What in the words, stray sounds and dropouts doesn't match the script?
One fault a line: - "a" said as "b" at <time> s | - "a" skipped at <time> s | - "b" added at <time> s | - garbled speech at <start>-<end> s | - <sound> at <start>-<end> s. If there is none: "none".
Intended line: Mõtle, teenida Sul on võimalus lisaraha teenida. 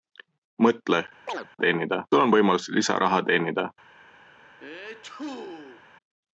- chirp at 1.3-1.5 s
- sneeze at 4.6-5.8 s